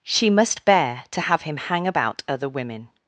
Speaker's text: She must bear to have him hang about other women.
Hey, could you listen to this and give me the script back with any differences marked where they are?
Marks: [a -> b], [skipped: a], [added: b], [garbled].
She must bear to have him hang about other women.